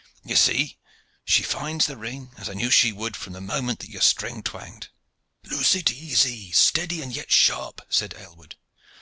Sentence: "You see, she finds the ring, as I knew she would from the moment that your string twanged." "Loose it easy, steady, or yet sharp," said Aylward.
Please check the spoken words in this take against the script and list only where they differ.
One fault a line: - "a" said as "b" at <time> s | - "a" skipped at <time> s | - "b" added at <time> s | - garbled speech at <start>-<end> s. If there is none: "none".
- "or" said as "and" at 7.0 s